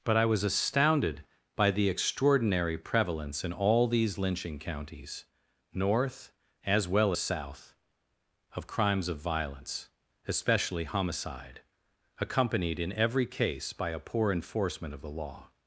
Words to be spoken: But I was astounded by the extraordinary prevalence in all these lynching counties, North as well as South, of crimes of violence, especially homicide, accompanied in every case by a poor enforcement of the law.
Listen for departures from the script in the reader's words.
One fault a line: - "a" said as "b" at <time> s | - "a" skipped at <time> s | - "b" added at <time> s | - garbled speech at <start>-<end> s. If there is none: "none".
- "as" skipped at 7.1 s